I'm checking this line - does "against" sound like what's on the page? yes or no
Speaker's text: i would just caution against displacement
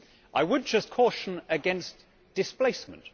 yes